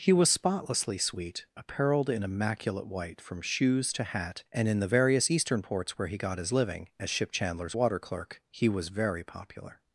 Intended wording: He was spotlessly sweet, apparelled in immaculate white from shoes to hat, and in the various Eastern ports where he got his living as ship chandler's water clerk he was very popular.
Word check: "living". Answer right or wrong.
right